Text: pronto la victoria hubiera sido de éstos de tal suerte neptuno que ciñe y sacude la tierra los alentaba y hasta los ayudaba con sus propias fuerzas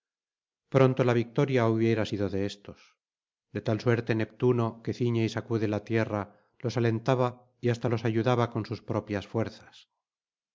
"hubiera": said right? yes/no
yes